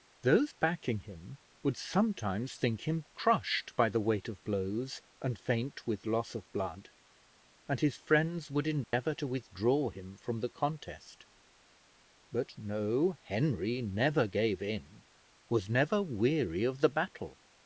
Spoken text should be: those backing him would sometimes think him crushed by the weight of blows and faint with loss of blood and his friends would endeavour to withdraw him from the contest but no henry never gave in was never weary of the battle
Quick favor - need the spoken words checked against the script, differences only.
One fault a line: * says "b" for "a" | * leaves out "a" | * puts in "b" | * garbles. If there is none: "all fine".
all fine